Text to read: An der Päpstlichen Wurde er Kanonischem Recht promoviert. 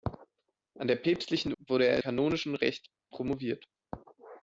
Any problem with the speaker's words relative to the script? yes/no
no